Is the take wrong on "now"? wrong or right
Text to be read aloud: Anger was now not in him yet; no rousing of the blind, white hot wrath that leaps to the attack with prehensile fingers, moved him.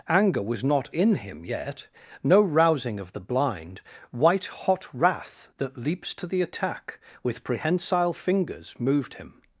wrong